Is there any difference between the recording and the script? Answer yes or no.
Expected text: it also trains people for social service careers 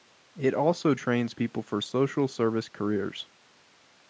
no